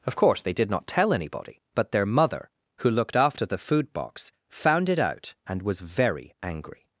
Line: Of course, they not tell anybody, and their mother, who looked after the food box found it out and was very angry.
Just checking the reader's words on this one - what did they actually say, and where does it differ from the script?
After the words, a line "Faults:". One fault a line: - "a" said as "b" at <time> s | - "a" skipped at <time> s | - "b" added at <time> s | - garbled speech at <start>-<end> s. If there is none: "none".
Of course, they did not tell anybody, but their mother, who looked after the food box found it out and was very angry.
Faults:
- "did" added at 0.5 s
- "and" said as "but" at 1.8 s